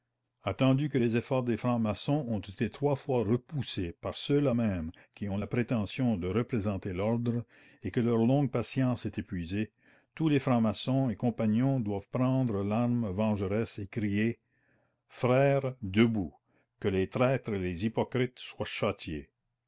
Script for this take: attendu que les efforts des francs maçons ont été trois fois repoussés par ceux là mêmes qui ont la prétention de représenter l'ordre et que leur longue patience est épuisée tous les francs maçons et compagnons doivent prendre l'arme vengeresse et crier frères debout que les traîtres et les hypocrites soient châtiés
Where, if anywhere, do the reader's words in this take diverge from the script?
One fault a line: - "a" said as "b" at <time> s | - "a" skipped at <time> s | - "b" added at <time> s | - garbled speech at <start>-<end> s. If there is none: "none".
none